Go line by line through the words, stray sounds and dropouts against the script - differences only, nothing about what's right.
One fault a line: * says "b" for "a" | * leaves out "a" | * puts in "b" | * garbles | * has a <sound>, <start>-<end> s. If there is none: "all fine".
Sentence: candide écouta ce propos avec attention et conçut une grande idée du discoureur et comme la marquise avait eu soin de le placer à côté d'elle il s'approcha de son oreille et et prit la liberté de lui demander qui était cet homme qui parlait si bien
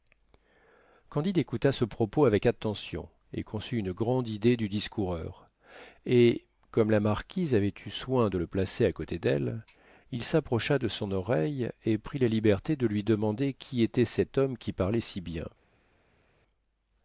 * leaves out "et"